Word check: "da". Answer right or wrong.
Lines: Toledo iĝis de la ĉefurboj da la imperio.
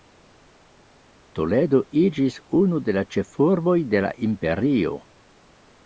wrong